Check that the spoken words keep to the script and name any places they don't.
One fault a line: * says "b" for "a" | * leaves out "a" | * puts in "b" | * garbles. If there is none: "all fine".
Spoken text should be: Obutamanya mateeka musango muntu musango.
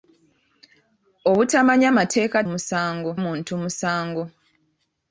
all fine